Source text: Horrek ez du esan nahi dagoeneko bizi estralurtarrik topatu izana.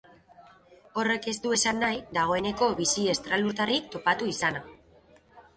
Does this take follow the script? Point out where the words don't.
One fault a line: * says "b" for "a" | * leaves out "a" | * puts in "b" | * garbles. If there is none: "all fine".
all fine